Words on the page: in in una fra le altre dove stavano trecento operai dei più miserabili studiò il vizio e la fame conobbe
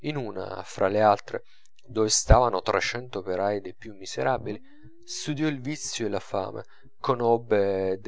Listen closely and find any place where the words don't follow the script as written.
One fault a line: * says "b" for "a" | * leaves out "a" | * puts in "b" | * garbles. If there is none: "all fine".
* leaves out "in"